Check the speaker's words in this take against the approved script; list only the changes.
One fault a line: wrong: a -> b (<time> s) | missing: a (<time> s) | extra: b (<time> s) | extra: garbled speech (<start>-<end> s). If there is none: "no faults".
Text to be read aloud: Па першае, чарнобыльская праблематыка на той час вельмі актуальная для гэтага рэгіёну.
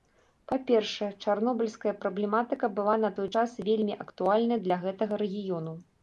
extra: была (2.8 s)